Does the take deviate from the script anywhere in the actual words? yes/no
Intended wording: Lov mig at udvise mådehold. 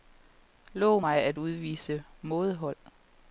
no